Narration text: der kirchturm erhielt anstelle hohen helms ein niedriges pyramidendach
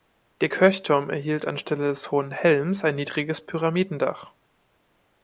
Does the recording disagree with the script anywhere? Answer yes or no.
yes